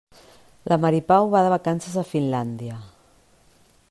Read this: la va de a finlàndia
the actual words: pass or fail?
fail